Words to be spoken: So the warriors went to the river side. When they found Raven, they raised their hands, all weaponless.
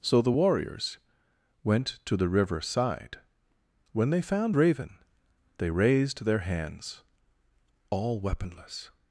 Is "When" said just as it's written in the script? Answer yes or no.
yes